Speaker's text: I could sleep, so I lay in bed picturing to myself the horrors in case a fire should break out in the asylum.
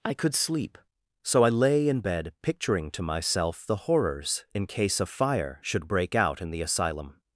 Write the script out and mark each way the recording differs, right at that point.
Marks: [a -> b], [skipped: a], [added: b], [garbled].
I could sleep, so I lay in bed picturing to myself the horrors in case a fire should break out in the asylum.